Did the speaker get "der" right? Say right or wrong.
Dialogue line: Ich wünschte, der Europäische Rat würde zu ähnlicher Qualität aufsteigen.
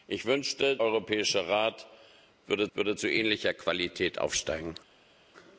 wrong